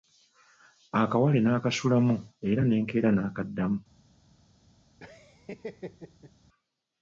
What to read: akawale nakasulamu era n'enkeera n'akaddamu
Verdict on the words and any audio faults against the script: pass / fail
fail